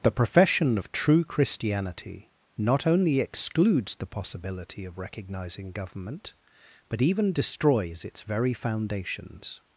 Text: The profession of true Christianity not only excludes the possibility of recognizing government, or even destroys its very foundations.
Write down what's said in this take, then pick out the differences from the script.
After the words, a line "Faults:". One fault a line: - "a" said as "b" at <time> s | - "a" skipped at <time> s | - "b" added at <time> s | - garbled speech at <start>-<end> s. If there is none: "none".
The profession of true Christianity not only excludes the possibility of recognizing government, but even destroys its very foundations.
Faults:
- "or" said as "but" at 6.9 s